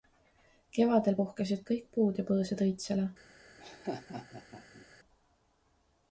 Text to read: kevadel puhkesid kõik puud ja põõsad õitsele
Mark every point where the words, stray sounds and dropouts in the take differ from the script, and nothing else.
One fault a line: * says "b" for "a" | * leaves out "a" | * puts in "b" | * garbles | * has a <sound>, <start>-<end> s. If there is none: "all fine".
* has a laugh, 3.6-4.9 s